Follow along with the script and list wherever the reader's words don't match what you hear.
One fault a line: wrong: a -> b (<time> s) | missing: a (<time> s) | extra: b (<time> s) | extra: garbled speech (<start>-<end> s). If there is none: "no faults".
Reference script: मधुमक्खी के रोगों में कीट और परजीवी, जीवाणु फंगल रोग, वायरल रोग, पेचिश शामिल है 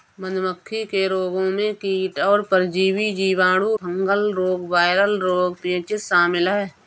no faults